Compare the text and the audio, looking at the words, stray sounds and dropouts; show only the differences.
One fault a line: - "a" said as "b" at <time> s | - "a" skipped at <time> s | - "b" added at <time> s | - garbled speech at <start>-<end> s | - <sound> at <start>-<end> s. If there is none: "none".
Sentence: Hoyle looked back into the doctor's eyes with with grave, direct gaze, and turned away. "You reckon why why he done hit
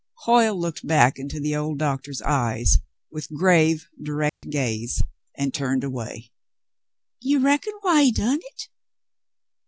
- "old" added at 1.6 s
- "with" skipped at 3.3 s
- dropout at 4.3-4.4 s
- "why" skipped at 8.1 s